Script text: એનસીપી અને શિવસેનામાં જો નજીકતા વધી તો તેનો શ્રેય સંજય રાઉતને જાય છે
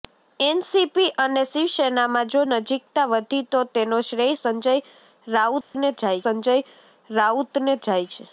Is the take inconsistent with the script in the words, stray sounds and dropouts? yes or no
yes